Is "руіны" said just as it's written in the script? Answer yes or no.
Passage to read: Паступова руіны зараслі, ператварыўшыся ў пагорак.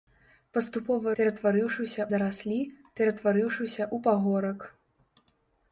no